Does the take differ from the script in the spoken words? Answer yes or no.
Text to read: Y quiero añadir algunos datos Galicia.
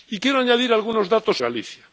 no